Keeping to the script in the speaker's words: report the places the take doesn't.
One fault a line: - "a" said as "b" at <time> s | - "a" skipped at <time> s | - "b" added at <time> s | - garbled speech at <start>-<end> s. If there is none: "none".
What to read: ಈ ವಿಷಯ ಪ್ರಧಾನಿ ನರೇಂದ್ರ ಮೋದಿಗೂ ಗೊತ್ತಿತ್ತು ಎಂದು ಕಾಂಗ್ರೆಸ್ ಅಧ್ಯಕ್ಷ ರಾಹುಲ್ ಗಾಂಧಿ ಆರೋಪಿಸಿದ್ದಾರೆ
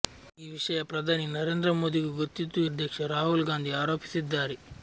- "ಎಂದು ಕಾಂಗ್ರೆಸ್" skipped at 2.6 s